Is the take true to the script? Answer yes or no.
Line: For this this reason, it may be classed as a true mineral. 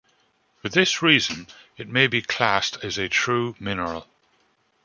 no